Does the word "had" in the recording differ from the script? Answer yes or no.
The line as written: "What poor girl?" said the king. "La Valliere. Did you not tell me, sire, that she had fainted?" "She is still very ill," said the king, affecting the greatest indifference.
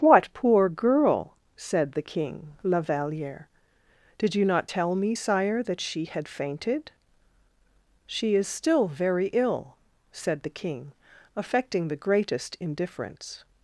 no